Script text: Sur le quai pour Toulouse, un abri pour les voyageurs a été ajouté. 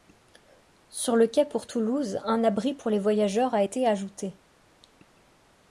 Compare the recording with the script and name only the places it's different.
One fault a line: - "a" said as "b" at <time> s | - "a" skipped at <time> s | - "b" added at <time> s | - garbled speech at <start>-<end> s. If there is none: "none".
none